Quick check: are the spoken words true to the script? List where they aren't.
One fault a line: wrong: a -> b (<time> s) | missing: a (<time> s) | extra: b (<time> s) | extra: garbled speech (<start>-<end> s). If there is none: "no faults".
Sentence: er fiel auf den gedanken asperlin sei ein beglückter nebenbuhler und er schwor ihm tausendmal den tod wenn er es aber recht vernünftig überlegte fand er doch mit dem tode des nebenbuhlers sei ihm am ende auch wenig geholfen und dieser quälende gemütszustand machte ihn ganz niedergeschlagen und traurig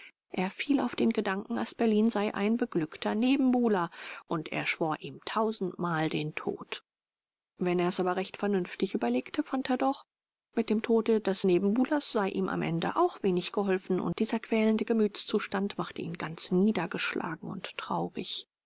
no faults